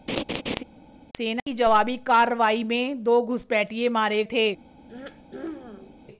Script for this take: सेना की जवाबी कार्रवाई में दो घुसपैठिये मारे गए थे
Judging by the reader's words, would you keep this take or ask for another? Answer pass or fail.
fail